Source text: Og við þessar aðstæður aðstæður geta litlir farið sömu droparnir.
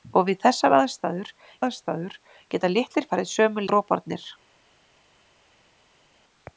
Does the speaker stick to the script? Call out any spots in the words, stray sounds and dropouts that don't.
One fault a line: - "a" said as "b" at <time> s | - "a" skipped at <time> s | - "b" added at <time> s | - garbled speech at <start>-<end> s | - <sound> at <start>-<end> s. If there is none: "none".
none